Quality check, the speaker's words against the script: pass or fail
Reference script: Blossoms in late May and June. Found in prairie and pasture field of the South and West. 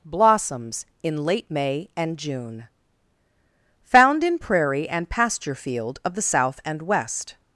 pass